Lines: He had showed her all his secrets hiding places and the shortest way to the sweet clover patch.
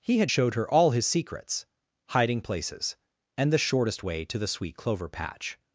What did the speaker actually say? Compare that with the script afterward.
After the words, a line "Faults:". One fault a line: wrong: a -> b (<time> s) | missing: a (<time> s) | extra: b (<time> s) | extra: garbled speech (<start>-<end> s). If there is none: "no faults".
He had showed her all his secrets hiding places and the shortest way to the sweet clover patch.
Faults:
no faults